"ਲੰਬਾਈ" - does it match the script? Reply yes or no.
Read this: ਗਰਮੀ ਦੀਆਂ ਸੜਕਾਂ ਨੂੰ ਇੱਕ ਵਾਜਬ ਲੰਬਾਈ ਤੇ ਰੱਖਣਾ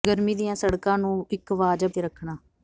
no